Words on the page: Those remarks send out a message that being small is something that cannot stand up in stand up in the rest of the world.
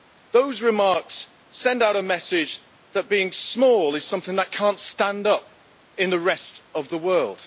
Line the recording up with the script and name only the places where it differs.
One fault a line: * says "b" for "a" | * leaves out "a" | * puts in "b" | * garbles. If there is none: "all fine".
* leaves out "stand up in"